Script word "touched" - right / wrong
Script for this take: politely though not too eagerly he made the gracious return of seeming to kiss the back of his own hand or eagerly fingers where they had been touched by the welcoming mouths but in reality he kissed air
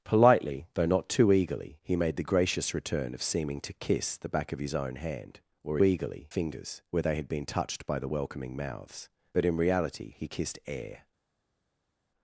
right